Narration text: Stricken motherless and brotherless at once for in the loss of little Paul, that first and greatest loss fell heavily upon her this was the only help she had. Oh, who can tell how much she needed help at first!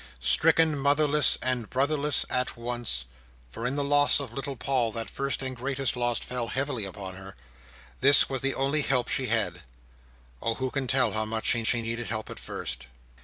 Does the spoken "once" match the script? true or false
true